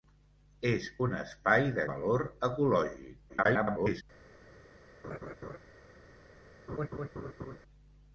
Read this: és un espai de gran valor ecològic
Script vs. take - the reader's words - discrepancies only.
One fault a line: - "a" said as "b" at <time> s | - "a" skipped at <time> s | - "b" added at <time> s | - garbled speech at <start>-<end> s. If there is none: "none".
- "gran" skipped at 1.9 s
- garbled speech at 3.3-4.0 s